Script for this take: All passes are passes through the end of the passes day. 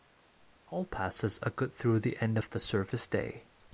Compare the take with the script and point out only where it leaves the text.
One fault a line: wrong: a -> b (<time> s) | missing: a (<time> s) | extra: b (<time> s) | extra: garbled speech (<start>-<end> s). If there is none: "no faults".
wrong: passes -> good (1.5 s)
wrong: passes -> service (2.6 s)